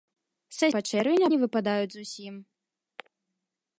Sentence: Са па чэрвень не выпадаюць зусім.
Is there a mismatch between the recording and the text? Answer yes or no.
no